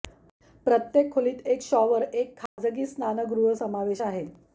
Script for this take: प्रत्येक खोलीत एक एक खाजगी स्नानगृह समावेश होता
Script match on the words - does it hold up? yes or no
no